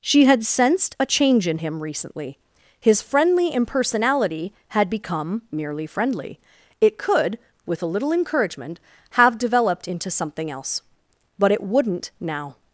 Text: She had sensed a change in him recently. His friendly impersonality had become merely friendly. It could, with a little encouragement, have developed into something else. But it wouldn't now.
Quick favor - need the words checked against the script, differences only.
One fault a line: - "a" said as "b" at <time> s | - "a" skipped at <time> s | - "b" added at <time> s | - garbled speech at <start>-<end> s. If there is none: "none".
none